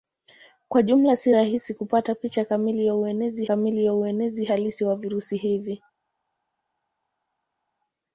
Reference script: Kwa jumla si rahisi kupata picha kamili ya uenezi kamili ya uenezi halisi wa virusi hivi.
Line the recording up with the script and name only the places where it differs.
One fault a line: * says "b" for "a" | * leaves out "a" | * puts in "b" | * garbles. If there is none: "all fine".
all fine